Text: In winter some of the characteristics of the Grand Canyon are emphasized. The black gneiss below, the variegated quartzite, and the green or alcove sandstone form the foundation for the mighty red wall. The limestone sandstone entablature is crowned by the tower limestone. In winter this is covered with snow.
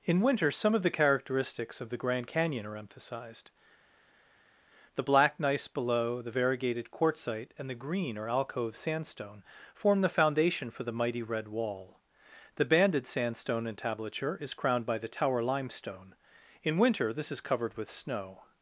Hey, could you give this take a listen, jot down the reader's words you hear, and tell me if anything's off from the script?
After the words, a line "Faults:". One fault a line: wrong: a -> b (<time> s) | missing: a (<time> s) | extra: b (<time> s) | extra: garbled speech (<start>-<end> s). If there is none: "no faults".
In winter some of the characteristics of the Grand Canyon are emphasized. The black gneiss below, the variegated quartzite, and the green or alcove sandstone form the foundation for the mighty red wall. The banded sandstone entablature is crowned by the tower limestone. In winter this is covered with snow.
Faults:
wrong: limestone -> banded (12.6 s)